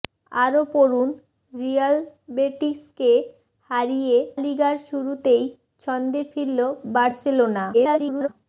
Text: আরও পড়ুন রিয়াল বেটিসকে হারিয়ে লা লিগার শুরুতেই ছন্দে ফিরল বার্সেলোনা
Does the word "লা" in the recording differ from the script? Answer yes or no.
yes